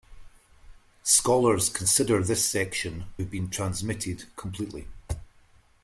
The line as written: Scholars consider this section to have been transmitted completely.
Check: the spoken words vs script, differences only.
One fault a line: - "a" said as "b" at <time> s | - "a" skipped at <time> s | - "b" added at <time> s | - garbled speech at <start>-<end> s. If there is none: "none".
- "to" skipped at 3.1 s